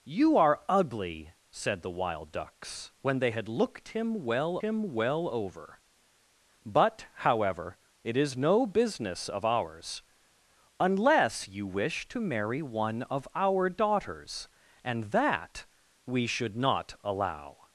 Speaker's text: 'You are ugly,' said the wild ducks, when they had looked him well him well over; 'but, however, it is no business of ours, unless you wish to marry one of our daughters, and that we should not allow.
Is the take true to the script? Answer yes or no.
yes